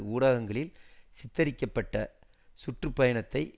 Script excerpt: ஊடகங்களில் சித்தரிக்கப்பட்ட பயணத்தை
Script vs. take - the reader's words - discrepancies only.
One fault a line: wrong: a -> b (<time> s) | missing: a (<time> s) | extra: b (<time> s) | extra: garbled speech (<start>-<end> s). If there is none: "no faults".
extra: சுற்று (2.6 s)